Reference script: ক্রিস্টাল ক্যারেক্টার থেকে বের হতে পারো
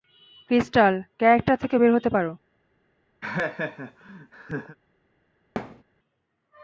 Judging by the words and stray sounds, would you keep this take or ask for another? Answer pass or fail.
fail